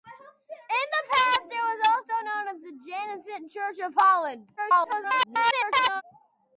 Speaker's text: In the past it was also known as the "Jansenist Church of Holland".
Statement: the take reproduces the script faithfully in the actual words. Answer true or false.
false